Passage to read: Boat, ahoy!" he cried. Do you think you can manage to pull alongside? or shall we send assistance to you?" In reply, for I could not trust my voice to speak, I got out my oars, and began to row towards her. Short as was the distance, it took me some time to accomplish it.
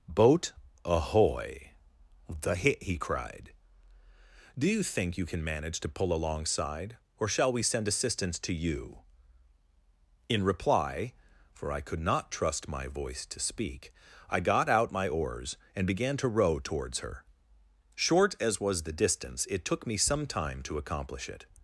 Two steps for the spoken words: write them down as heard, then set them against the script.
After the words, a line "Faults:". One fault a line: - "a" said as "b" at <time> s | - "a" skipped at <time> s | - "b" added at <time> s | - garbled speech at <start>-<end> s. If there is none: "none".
Boat, ahoy!" the hit he cried. Do you think you can manage to pull alongside? or shall we send assistance to you?" In reply, for I could not trust my voice to speak, I got out my oars, and began to row towards her. Short as was the distance, it took me some time to accomplish it.
Faults:
- "the hit" added at 2.3 s